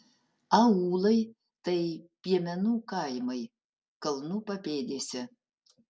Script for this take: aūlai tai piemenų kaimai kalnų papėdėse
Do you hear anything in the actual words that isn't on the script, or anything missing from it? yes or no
no